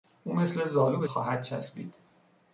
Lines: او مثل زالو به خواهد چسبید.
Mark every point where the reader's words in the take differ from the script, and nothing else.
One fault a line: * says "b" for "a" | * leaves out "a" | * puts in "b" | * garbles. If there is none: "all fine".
all fine